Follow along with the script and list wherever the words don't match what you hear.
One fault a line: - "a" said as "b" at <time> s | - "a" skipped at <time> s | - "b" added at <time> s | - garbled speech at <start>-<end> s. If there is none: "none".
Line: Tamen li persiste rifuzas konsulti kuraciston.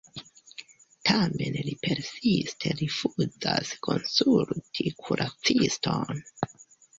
none